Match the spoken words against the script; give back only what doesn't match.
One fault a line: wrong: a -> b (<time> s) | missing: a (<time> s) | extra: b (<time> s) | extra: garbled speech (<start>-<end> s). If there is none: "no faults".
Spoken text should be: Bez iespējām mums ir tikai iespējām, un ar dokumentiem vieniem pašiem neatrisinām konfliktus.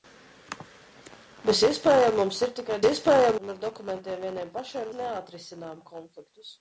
no faults